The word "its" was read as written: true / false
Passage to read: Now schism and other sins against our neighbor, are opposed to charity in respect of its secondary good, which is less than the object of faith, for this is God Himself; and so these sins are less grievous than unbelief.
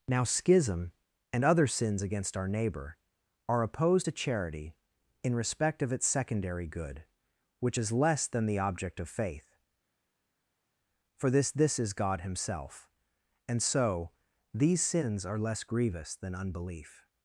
true